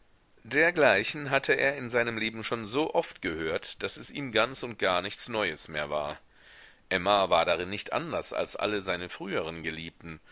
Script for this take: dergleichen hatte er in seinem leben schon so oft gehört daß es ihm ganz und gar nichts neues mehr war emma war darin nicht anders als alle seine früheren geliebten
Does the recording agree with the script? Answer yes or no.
yes